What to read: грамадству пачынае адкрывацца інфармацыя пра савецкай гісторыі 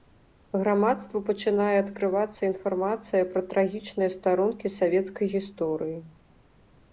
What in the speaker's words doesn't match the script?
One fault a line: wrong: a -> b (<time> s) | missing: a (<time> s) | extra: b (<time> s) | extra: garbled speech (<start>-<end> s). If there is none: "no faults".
extra: трагічныя старонкі (3.5 s)